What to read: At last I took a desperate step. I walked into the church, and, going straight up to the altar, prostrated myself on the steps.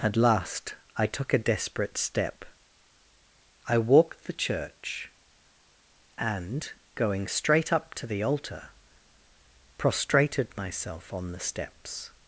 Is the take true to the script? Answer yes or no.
no